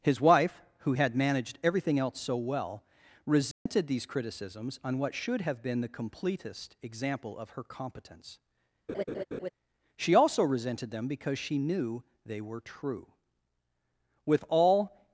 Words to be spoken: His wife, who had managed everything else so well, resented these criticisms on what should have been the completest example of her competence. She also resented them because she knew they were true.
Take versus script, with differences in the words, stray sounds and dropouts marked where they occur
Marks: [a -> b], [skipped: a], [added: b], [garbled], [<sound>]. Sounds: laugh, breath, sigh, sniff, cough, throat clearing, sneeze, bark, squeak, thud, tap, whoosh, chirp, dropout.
His wife, who had managed everything else so well, resented [dropout] these criticisms on what should have been the completest example of her competence. [laugh] She also resented them because she knew they were true. [added: With all]